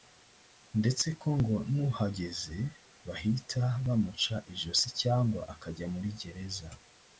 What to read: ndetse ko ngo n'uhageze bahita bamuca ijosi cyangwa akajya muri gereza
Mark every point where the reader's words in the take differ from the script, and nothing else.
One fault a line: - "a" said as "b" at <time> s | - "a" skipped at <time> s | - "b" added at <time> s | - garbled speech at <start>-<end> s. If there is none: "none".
none